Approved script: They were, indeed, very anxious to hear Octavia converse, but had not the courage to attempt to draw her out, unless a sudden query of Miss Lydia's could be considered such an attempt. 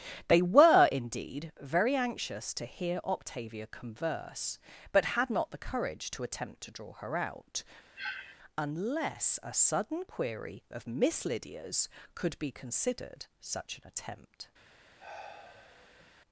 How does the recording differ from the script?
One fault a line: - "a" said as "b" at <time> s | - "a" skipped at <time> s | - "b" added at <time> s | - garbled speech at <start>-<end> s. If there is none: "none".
none